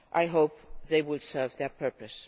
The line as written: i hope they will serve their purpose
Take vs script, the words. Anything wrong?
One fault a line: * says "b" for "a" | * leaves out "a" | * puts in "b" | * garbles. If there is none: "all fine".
all fine